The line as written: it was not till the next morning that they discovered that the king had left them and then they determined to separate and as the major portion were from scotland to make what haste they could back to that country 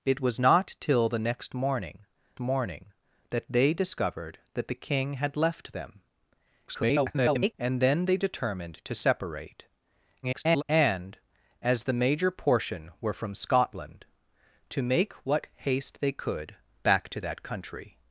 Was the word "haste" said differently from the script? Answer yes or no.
no